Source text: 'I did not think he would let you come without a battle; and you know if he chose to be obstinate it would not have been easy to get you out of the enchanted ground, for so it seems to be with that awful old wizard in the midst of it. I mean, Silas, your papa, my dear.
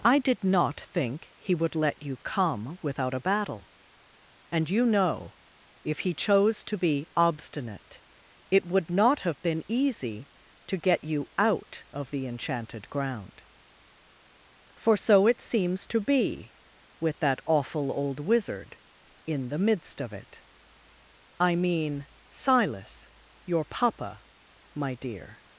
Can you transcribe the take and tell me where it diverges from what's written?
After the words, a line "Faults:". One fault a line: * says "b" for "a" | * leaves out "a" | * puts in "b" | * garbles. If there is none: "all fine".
'I did not think he would let you come without a battle; and you know if he chose to be obstinate it would not have been easy to get you out of the enchanted ground, for so it seems to be with that awful old wizard in the midst of it. I mean, Silas, your papa, my dear.
Faults:
all fine